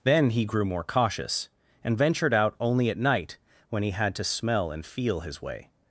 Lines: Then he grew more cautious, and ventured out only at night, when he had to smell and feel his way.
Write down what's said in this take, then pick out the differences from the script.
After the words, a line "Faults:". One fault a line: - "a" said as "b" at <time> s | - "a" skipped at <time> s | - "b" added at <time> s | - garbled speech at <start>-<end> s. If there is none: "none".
Then he grew more cautious, and ventured out only at night, when he had to smell and feel his way.
Faults:
none